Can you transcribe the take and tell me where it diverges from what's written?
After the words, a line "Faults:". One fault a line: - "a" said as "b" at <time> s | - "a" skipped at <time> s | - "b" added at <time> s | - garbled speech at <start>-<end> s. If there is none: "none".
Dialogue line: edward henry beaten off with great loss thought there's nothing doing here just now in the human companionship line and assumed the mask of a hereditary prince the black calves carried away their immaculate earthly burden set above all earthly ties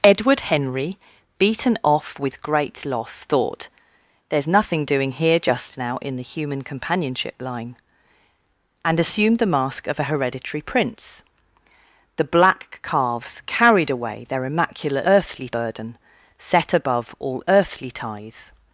edward henry beaten off with great loss thought there's nothing doing here just now in the human companionship line and assumed the mask of a hereditary prince the black calves carried away their immaculate earthly burden set above all earthly ties
Faults:
none